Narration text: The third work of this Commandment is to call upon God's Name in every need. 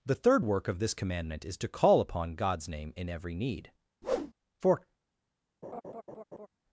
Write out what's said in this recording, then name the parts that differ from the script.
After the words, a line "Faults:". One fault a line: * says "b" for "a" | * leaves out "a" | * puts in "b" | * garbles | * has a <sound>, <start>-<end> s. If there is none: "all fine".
The third work of this Commandment is to call upon God's Name in every need. For
Faults:
* has a whoosh, 4.0-4.3 s
* puts in "For"
* has a laugh, 5.6-6.5 s